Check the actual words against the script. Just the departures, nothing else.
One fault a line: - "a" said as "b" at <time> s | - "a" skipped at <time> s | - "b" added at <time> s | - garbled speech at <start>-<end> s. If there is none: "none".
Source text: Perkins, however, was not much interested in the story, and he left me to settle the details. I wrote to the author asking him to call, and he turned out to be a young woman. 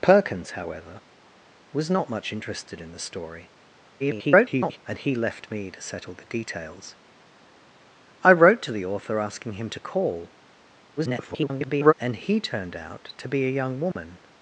- garbled speech at 4.0-4.8 s
- garbled speech at 11.0-11.9 s